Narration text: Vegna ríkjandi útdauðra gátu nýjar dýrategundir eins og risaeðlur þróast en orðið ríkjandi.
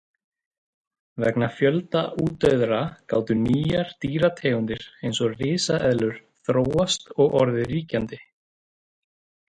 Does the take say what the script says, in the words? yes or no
no